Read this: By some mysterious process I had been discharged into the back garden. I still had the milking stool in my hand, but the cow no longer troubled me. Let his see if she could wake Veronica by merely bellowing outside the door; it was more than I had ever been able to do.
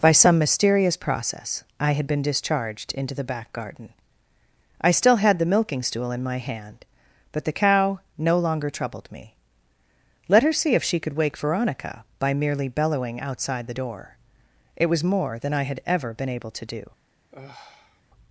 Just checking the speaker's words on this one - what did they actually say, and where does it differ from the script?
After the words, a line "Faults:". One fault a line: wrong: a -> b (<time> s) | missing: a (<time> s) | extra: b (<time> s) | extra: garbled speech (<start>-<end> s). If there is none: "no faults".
By some mysterious process I had been discharged into the back garden. I still had the milking stool in my hand, but the cow no longer troubled me. Let her see if she could wake Veronica by merely bellowing outside the door; it was more than I had ever been able to do.
Faults:
wrong: his -> her (10.4 s)